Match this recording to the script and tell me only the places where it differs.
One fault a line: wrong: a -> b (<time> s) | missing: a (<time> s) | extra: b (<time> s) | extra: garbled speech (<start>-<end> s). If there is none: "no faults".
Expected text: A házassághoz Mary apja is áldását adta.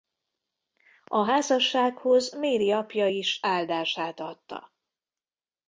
no faults